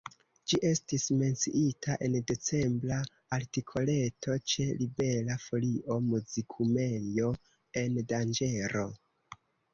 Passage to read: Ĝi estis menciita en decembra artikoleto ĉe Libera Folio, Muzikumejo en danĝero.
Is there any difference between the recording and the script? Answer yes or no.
no